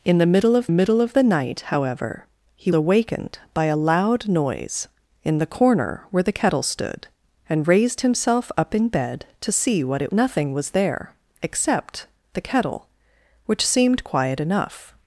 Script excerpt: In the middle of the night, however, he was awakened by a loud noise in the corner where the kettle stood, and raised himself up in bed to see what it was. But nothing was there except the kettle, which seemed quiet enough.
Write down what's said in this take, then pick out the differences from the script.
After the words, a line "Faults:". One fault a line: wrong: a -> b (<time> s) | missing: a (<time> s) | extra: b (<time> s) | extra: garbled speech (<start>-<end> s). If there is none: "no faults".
In the middle of middle of the night, however, he awakened by a loud noise in the corner where the kettle stood, and raised himself up in bed to see what it nothing was there except the kettle, which seemed quiet enough.
Faults:
extra: middle of (0.7 s)
missing: was (2.7 s)
missing: was But (10.1 s)